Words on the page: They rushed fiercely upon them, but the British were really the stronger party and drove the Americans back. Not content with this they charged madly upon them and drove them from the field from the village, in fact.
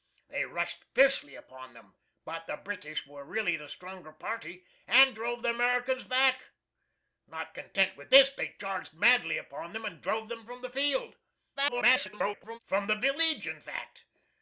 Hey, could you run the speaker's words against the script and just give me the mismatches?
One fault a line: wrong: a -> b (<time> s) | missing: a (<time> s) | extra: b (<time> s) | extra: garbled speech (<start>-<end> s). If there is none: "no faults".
extra: garbled speech (11.6-12.6 s)